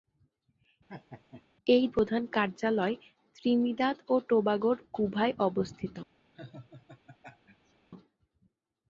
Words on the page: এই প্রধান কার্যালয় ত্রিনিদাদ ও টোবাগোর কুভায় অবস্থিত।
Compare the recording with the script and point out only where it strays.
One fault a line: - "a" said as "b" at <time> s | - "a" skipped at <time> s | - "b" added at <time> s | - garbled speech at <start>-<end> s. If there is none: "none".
none